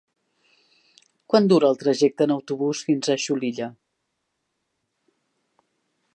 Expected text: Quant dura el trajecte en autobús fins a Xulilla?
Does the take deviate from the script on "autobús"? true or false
false